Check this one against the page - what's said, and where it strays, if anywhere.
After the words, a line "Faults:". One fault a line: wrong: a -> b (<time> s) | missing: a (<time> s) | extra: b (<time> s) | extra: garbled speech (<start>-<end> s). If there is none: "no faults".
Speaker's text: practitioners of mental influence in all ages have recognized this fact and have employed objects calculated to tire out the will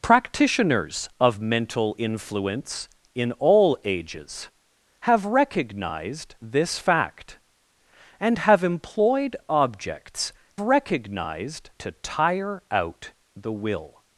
practitioners of mental influence in all ages have recognized this fact and have employed objects recognized to tire out the will
Faults:
wrong: calculated -> recognized (10.6 s)